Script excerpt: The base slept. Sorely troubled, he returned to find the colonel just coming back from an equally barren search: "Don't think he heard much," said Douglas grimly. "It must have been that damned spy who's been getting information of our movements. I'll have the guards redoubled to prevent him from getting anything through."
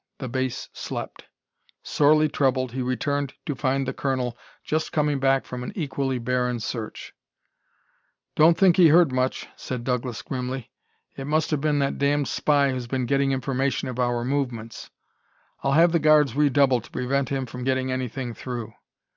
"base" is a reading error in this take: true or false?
false